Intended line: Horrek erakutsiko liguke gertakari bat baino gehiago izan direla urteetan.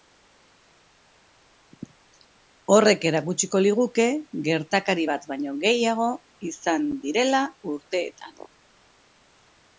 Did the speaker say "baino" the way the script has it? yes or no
yes